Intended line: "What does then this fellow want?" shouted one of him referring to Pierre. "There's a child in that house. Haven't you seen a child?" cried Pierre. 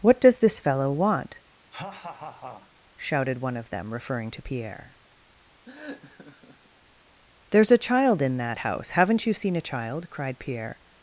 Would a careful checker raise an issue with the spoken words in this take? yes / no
yes